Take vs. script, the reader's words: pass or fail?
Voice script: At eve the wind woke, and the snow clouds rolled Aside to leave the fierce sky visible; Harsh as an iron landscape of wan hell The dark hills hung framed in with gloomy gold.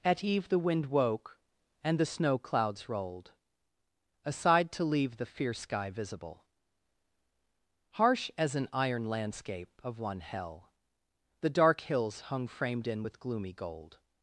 fail